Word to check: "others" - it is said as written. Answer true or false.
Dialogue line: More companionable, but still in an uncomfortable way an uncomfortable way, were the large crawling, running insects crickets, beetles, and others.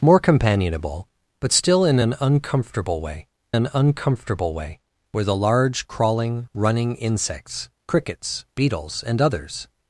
true